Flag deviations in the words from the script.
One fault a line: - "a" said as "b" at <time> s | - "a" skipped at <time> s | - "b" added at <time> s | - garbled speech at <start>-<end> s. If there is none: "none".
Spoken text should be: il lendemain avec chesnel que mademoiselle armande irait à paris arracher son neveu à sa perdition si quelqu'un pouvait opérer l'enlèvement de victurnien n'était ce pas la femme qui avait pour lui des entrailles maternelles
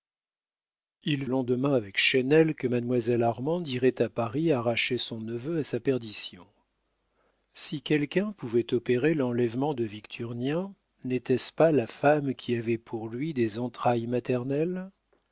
none